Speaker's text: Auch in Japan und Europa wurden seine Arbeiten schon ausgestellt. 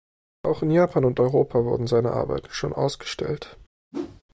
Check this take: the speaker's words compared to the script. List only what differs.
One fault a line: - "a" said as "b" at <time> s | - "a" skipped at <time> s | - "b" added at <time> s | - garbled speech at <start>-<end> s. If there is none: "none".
none